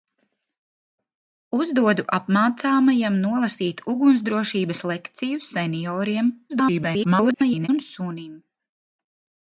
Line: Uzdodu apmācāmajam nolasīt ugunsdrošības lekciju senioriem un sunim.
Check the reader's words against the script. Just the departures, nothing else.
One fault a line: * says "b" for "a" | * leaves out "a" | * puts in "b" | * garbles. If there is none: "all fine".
* garbles